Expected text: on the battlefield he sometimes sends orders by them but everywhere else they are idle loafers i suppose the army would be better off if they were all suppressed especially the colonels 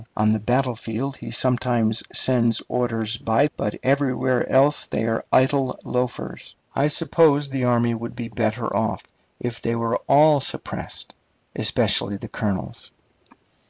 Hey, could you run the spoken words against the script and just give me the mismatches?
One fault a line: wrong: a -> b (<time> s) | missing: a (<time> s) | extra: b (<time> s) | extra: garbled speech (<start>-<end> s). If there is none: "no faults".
missing: them (3.5 s)